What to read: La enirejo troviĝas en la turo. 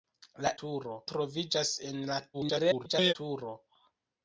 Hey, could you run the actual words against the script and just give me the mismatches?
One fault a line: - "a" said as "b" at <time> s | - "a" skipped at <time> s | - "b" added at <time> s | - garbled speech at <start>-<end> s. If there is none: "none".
- "enirejo" said as "turo" at 0.6 s
- garbled speech at 2.3-3.1 s